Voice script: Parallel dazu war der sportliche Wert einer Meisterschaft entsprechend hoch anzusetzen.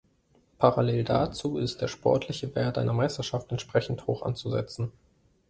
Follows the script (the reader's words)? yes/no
no